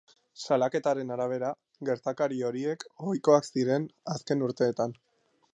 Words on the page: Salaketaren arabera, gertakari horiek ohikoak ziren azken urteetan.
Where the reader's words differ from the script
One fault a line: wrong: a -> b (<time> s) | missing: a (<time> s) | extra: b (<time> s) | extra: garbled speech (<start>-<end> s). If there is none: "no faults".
no faults